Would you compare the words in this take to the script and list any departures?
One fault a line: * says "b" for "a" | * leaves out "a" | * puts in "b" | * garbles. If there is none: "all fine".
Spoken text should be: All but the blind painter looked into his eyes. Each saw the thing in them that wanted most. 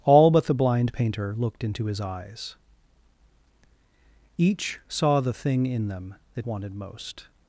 all fine